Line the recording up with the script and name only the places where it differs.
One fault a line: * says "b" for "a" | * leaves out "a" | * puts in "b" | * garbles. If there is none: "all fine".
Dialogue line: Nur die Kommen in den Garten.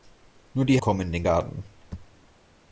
all fine